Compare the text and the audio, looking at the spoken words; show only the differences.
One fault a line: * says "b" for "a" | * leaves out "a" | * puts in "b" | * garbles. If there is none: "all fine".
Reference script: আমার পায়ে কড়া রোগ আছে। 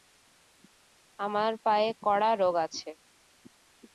all fine